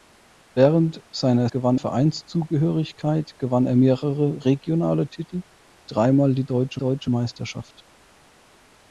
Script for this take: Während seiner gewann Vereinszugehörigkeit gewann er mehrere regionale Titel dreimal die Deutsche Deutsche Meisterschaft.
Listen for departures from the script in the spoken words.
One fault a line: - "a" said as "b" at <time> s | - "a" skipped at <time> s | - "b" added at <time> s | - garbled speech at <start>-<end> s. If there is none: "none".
none